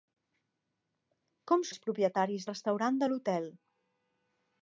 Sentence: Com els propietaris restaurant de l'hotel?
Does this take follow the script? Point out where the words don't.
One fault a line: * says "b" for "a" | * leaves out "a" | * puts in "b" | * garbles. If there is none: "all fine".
all fine